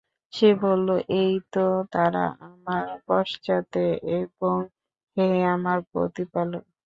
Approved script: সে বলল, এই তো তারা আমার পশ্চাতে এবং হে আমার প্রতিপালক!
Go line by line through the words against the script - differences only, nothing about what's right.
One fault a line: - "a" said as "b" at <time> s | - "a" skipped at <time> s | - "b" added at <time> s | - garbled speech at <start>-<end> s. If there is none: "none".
none